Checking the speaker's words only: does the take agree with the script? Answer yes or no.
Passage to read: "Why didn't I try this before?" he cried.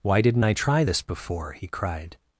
yes